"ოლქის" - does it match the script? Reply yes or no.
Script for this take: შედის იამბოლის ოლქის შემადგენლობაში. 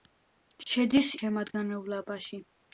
no